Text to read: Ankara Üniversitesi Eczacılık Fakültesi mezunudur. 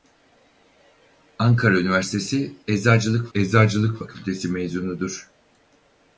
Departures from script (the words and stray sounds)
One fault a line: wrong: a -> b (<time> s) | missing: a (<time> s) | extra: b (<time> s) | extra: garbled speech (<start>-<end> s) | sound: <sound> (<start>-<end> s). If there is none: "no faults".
extra: Eczacılık (3.3 s)